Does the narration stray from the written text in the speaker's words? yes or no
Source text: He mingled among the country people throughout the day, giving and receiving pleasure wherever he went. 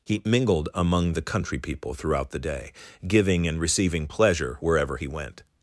no